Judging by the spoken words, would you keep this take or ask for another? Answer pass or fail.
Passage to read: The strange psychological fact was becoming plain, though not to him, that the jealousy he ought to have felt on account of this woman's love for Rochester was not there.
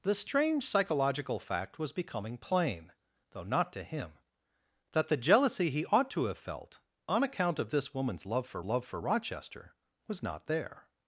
fail